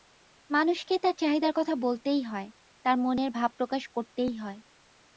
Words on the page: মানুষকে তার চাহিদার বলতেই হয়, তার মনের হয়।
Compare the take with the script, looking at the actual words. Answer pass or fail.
fail